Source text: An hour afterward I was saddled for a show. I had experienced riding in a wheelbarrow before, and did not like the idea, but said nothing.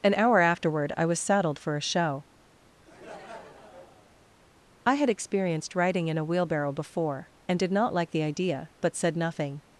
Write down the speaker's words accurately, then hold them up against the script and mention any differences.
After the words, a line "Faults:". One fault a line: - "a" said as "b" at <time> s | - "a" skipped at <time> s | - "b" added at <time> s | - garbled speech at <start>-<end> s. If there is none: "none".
An hour afterward I was saddled for a show. I had experienced riding in a wheelbarrow before, and did not like the idea, but said nothing.
Faults:
none